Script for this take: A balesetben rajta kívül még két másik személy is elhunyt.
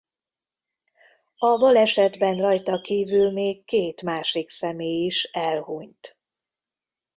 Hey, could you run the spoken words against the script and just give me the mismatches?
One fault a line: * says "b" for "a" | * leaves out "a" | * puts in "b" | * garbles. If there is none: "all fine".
all fine